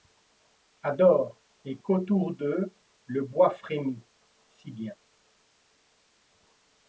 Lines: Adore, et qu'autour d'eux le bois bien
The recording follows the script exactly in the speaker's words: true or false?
false